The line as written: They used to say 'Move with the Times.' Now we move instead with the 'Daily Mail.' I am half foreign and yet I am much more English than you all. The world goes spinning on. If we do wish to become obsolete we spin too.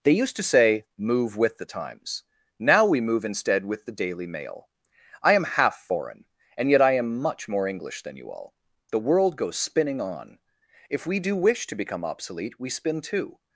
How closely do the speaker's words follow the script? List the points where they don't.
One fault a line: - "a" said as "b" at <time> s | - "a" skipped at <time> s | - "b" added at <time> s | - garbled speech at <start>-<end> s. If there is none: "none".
none